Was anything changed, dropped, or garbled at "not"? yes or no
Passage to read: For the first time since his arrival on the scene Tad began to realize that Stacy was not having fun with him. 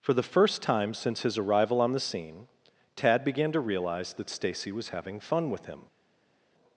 yes